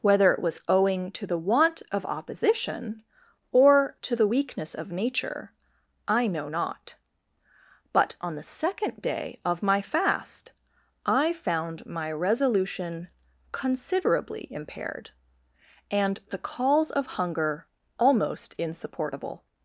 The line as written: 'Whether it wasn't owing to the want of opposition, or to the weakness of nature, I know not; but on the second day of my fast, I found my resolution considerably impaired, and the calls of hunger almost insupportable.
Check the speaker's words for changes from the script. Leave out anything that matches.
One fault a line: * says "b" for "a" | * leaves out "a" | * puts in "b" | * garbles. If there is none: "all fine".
* says "was" for "wasn't"